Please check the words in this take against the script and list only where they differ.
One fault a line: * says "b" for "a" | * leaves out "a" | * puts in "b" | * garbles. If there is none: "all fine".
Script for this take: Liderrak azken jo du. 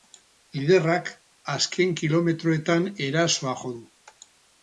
* puts in "kilometroetan erasoa"